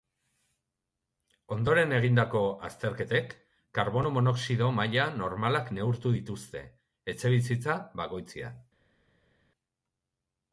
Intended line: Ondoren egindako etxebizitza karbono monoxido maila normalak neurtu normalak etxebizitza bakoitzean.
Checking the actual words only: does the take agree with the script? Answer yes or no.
no